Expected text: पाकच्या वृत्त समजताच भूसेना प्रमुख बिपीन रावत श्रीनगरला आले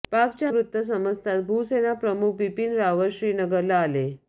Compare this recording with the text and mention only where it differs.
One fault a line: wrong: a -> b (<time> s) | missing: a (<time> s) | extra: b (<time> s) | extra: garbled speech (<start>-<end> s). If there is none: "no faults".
no faults